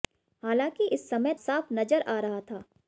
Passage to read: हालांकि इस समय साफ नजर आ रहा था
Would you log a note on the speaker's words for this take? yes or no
no